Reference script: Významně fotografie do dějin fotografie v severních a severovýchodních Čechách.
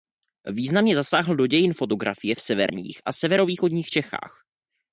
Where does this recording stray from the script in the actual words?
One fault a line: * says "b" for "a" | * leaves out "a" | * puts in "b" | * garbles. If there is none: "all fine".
* says "zasáhl" for "fotografie"